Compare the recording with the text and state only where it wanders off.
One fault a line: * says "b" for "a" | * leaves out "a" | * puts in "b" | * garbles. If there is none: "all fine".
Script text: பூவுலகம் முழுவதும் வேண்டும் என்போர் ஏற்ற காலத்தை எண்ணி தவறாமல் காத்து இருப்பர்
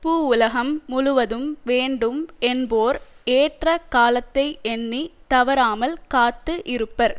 all fine